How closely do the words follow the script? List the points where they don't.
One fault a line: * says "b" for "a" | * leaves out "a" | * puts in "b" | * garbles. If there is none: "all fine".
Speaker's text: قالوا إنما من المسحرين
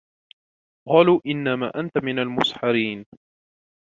* puts in "أنت"